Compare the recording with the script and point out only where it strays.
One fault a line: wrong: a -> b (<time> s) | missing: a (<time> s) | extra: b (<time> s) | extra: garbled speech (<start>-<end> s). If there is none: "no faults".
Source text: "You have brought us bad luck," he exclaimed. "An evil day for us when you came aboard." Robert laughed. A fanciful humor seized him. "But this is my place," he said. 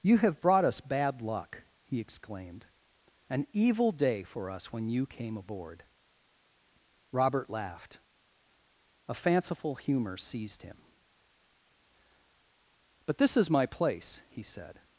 no faults